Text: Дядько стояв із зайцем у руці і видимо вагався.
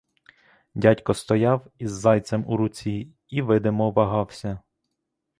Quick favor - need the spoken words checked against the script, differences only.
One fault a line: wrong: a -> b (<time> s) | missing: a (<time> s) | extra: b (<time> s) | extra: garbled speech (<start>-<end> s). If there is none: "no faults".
no faults